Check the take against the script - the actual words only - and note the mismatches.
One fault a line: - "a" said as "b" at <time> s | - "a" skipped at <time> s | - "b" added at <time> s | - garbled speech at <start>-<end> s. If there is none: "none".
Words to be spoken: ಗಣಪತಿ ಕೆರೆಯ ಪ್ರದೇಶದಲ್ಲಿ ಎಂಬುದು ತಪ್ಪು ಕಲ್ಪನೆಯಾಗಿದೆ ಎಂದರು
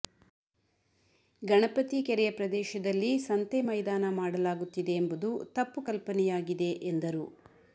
- "ಸಂತೆ ಮೈದಾನ ಮಾಡಲಾಗುತ್ತಿದೆ" added at 3.3 s